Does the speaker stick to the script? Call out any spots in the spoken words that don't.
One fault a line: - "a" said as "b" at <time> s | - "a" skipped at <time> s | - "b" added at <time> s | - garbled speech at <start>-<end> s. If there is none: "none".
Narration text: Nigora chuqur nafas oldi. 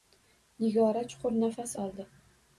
none